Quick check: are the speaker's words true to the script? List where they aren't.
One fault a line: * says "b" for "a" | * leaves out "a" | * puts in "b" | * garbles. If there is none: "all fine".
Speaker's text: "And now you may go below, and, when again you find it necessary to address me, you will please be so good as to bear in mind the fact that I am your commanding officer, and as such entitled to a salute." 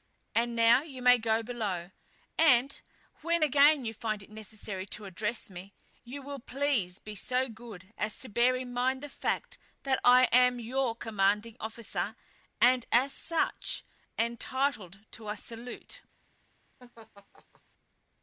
all fine